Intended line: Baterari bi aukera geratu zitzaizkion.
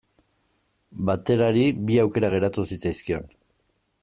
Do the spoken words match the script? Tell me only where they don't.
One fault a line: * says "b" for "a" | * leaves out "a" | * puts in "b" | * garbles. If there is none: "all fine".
all fine